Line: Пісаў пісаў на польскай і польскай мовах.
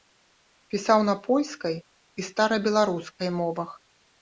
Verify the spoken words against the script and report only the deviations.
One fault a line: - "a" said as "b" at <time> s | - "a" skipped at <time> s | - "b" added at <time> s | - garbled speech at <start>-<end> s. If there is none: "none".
- "пісаў" skipped at 1.0 s
- "польскай" said as "старабеларускай" at 2.3 s